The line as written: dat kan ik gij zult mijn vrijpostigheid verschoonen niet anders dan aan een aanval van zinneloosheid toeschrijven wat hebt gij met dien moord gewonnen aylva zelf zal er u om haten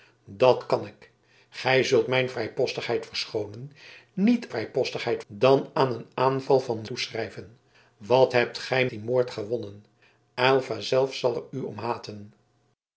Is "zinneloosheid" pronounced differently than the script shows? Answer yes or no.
yes